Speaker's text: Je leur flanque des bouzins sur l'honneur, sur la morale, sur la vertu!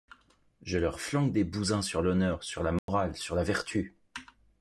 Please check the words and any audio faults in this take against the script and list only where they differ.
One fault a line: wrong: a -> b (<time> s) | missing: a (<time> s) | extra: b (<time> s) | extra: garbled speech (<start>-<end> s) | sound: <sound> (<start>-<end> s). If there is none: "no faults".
sound: dropout (2.8-2.9 s)